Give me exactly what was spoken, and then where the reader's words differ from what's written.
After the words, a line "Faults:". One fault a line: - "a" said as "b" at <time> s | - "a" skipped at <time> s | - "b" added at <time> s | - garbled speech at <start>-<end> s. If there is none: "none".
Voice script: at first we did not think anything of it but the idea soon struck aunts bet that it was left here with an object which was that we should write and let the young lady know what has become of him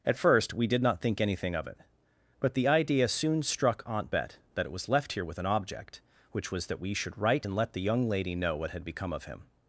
at first we did not think anything of it but the idea soon struck aunt bet that it was left here with an object which was that we should write and let the young lady know what had become of him
Faults:
- "aunts" said as "aunt" at 3.8 s
- "has" said as "had" at 8.7 s